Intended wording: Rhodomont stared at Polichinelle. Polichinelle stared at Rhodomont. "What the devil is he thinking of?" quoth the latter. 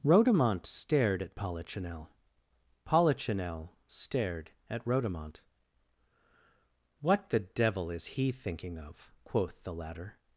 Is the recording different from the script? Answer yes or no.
no